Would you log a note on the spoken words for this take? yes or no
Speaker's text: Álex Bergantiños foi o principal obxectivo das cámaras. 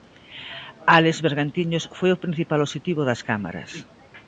no